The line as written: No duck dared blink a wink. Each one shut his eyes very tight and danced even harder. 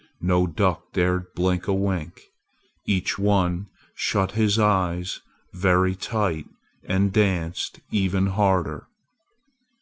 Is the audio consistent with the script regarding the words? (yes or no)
yes